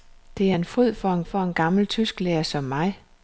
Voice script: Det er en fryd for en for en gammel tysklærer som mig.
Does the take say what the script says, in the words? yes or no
yes